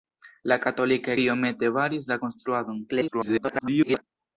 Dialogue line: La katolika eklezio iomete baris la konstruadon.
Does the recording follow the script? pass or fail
fail